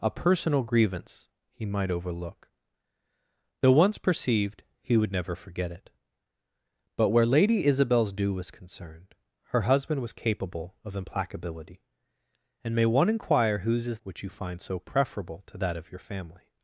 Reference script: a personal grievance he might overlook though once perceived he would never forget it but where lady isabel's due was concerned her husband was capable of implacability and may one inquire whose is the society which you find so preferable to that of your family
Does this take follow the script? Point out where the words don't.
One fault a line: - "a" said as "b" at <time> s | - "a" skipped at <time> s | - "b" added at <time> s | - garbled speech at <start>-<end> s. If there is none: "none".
- "the society" skipped at 14.0 s